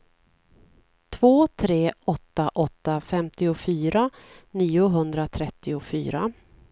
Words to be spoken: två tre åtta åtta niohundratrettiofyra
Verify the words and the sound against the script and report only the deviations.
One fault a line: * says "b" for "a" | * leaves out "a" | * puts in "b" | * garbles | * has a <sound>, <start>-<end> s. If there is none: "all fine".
* puts in "femtiofyra"